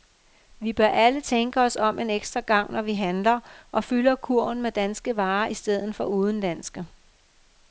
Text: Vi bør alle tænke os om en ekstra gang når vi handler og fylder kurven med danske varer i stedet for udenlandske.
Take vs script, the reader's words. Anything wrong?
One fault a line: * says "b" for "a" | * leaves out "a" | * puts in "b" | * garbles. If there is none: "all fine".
all fine